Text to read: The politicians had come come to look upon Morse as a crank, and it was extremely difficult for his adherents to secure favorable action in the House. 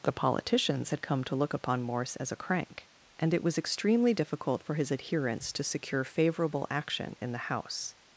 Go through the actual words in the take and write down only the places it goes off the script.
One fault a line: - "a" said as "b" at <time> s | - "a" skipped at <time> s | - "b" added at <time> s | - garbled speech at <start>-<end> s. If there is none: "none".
- "come" skipped at 1.3 s